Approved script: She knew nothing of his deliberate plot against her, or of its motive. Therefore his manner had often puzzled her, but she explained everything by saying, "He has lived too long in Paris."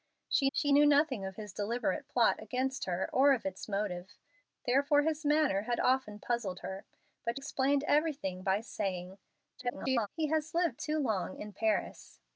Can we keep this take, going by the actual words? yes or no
no